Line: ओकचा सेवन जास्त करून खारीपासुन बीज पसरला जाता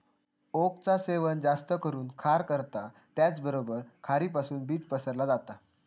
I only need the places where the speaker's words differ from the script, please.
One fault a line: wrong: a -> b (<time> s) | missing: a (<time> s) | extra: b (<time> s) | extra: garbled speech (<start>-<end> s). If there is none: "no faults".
extra: खार करता त्याचबरोबर (2.2 s)